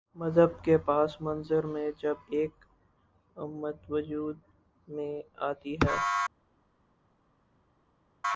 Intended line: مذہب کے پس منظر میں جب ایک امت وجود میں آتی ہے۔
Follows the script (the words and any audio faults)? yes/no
yes